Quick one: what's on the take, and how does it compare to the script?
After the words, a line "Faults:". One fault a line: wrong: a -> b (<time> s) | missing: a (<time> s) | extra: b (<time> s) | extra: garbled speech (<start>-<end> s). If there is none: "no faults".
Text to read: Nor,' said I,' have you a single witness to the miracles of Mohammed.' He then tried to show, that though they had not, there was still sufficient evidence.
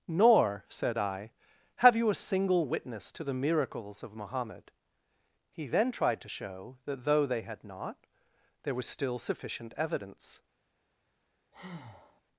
Nor,' said I,' have you a single witness to the miracles of Mohammed.' He then tried to show, that though they had not, there was still sufficient evidence.
Faults:
no faults